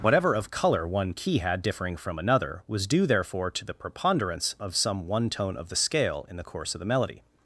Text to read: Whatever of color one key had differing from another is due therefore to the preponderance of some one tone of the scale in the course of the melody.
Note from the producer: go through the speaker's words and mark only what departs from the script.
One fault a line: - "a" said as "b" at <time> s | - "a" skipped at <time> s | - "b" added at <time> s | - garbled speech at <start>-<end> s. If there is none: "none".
- "is" said as "was" at 2.7 s